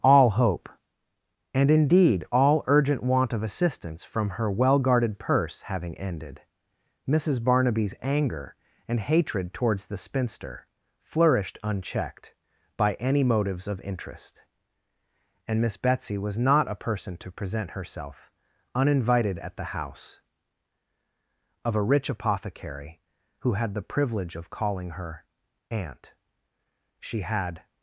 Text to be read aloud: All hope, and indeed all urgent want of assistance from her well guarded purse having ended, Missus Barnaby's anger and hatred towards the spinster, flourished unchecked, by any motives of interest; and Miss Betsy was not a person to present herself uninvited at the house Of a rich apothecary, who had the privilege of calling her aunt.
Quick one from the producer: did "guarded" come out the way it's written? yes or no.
yes